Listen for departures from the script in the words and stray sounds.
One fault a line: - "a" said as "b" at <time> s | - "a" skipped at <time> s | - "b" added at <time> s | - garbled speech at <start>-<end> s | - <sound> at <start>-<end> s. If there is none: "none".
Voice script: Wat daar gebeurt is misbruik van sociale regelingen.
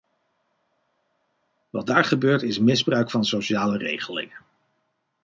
none